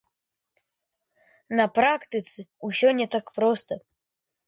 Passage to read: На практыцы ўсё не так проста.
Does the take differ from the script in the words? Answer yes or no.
no